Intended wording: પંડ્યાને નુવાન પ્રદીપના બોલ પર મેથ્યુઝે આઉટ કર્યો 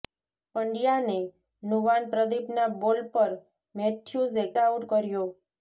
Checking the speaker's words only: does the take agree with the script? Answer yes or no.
yes